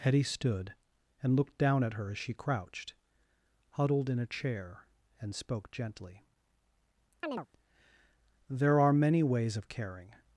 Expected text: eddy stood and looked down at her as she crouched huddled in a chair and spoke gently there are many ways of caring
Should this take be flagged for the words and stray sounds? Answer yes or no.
yes